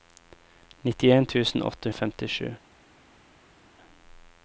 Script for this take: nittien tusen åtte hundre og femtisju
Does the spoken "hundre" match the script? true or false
false